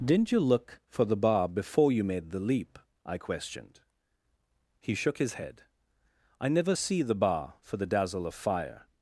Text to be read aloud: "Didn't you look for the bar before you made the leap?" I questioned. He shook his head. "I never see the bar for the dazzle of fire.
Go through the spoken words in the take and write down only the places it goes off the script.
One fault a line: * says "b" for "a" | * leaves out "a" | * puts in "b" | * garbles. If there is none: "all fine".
all fine